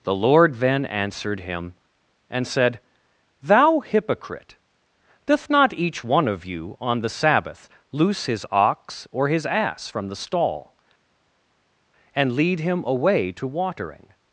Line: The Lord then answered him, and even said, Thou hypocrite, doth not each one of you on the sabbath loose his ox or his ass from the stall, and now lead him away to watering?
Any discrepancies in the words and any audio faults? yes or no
yes